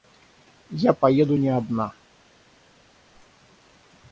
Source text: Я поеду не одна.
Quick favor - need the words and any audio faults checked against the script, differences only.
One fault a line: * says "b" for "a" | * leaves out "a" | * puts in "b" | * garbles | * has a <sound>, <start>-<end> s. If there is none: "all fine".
all fine